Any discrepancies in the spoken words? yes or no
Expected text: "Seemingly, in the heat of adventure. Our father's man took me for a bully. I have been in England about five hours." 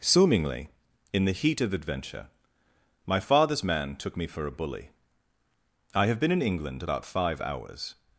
yes